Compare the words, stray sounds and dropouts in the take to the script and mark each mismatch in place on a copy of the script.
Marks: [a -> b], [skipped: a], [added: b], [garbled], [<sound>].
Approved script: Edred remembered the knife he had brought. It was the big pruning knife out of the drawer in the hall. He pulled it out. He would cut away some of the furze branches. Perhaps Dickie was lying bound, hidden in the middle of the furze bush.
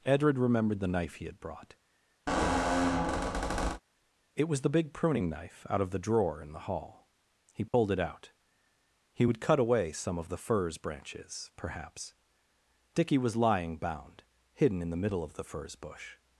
Edred remembered the knife he had brought. [squeak] It was the big pruning knife out of the drawer in the hall. He pulled [dropout] it out. He would cut away some of the furze branches. Perhaps Dickie was lying bound, hidden in the middle of the furze bush.